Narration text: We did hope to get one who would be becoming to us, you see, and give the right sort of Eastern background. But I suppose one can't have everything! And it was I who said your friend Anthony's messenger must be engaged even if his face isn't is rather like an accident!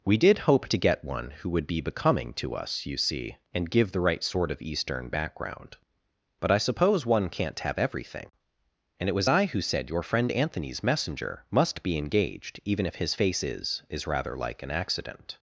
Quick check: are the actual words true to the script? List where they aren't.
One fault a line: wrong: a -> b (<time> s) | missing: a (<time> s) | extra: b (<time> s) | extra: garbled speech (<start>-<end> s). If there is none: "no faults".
wrong: isn't -> is (13.4 s)